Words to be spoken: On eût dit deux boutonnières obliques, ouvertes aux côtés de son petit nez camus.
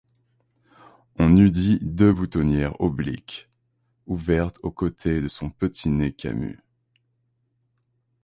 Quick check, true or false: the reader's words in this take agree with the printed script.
true